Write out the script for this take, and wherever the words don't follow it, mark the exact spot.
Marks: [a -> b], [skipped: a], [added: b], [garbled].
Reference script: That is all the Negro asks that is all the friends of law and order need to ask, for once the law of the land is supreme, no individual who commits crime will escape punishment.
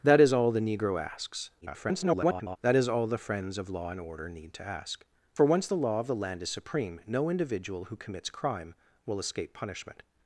That is all the Negro asks [garbled] that is all the friends of law and order need to ask, for once the law of the land is supreme, no individual who commits crime will escape punishment.